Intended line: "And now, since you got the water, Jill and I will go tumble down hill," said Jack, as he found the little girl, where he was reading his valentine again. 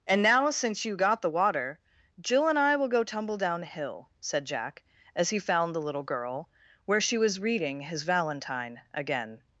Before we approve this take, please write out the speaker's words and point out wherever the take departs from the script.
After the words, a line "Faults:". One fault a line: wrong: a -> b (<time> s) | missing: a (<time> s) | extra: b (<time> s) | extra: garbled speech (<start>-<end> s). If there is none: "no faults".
"And now, since you got the water, Jill and I will go tumble down hill," said Jack, as he found the little girl, where she was reading his valentine again.
Faults:
wrong: he -> she (7.0 s)